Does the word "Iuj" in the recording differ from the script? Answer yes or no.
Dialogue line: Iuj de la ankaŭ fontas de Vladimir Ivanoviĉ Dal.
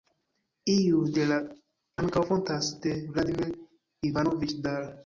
no